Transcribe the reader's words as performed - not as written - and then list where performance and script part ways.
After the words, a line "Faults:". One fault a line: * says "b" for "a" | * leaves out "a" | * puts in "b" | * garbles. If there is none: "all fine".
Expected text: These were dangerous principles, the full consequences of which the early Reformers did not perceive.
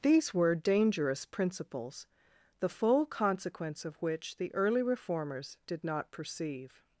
These were dangerous principles, the full consequence of which the early Reformers did not perceive.
Faults:
* says "consequence" for "consequences"